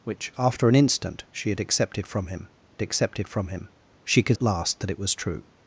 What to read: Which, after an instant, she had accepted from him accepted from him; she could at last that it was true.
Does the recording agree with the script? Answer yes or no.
yes